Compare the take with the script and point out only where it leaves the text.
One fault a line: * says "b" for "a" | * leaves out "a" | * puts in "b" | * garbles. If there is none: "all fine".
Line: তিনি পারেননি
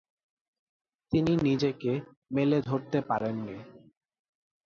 * puts in "নিজেকে মেলে ধরতে"